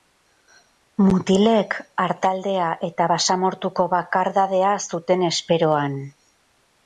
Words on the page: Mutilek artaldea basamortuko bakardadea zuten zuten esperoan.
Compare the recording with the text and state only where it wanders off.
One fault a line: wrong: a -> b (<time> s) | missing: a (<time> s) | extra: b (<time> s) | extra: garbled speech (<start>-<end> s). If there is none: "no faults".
extra: eta (2.9 s)
missing: zuten (5.2 s)